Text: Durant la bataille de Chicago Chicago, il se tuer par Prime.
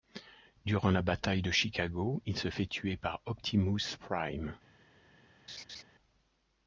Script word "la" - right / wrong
right